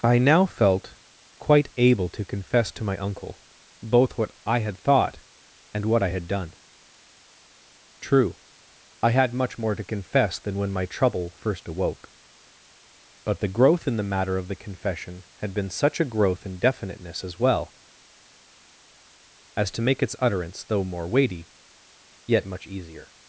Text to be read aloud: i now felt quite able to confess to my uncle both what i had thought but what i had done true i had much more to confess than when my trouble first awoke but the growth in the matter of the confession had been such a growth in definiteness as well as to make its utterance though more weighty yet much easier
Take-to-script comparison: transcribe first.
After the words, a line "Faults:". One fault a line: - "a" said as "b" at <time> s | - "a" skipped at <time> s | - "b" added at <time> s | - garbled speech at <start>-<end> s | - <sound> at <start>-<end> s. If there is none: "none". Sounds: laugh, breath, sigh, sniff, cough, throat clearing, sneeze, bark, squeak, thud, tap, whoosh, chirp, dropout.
i now felt quite able to confess to my uncle both what i had thought and what i had done true i had much more to confess than when my trouble first awoke but the growth in the matter of the confession had been such a growth in definiteness as well as to make its utterance though more weighty yet much easier
Faults:
- "but" said as "and" at 5.7 s